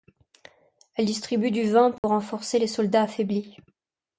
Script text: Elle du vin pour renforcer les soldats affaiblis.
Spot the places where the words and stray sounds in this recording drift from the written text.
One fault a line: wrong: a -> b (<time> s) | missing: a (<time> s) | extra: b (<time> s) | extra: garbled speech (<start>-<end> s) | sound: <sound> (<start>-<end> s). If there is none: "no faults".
extra: distribue (1.1 s)
sound: dropout (2.0-2.0 s)